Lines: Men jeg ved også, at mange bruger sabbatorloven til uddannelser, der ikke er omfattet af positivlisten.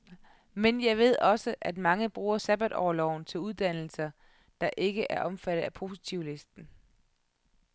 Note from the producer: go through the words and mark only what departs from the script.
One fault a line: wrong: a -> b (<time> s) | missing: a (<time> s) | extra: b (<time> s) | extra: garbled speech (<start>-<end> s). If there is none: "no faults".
no faults